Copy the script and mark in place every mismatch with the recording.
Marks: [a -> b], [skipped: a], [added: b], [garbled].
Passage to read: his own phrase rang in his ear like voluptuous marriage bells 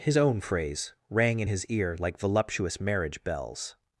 his own phrase rang in his ear like voluptuous marriage bells